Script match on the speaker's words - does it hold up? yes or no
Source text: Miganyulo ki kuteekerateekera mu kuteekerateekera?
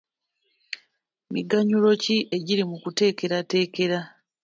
no